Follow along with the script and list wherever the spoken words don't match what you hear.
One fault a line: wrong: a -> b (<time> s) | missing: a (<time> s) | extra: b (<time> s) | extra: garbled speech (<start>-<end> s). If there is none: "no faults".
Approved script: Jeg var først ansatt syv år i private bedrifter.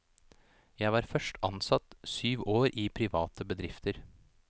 no faults